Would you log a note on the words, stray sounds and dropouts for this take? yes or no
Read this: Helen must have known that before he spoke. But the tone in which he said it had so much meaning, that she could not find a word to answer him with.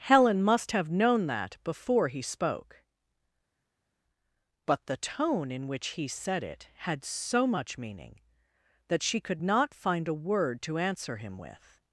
no